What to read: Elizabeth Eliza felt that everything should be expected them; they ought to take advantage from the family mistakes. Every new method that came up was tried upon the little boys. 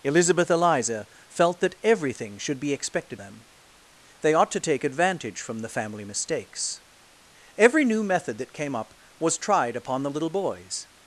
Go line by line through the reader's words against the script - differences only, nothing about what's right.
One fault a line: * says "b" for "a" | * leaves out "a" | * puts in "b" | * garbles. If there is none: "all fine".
all fine